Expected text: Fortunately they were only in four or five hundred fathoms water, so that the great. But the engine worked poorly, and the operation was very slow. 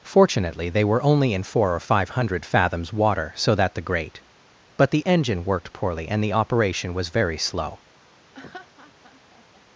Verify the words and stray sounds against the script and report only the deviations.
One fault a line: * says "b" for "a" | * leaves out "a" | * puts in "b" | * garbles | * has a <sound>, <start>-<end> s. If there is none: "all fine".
* has a laugh, 8.3-9.6 s